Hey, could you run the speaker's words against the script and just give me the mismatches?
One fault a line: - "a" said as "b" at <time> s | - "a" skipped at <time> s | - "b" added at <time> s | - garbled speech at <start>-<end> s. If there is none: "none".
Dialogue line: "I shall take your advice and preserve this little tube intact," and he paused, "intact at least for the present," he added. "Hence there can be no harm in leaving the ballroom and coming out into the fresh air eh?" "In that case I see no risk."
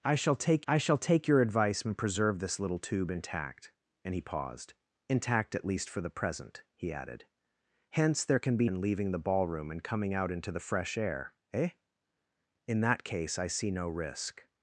- "I shall take" added at 0.7 s
- "no harm" skipped at 8.7 s